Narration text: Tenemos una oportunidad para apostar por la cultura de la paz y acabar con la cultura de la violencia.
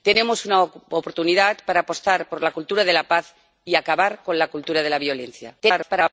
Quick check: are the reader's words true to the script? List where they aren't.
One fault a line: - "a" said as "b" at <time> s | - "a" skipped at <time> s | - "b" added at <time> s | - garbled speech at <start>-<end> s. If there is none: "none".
- garbled speech at 5.6-6.1 s